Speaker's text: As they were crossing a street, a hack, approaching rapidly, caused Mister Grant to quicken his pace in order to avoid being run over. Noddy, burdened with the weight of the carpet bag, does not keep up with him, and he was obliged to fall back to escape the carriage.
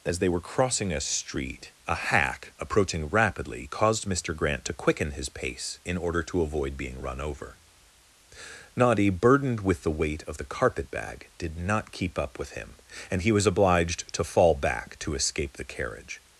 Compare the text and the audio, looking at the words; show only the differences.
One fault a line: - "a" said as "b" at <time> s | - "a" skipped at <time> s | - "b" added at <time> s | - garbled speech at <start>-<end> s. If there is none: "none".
- "does" said as "did" at 11.4 s